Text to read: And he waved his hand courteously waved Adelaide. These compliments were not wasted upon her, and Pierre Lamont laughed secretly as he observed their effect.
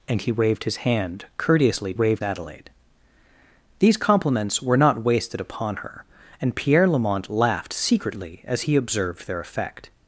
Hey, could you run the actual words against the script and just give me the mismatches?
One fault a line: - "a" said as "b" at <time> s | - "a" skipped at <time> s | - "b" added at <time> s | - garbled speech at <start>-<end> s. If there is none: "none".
none